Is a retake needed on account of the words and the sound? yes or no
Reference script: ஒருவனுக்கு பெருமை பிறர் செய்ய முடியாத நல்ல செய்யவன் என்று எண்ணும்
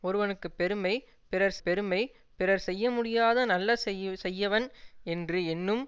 yes